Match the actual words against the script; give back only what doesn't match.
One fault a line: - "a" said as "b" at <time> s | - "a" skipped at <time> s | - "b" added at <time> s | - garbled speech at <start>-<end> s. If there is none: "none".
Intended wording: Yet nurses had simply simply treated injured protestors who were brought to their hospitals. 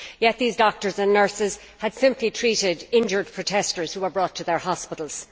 - "these doctors and" added at 0.4 s
- "simply" skipped at 2.3 s